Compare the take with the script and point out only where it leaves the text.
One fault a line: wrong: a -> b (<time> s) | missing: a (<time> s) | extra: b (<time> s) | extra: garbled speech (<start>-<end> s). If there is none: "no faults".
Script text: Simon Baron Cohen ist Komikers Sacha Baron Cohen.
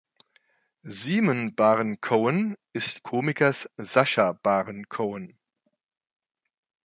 no faults